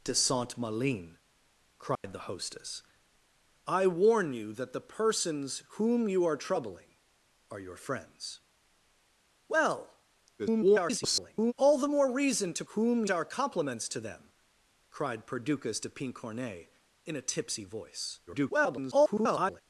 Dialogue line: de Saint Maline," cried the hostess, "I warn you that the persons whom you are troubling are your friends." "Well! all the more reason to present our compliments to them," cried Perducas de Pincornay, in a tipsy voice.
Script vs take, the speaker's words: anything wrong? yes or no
yes